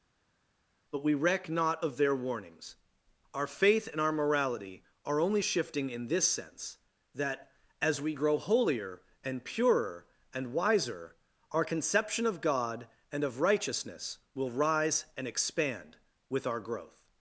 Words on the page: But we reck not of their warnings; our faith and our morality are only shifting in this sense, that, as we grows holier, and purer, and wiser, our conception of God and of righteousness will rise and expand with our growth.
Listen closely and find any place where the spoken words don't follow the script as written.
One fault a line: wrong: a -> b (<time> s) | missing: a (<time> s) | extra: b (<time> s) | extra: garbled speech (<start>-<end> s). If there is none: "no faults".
wrong: grows -> grow (8.1 s)